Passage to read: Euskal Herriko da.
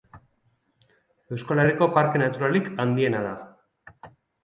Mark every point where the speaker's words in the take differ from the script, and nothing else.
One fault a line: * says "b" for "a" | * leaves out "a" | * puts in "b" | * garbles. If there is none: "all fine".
* puts in "parke naturalik handiena"